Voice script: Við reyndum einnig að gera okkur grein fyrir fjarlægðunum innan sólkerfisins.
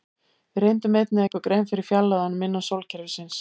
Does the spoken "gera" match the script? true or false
false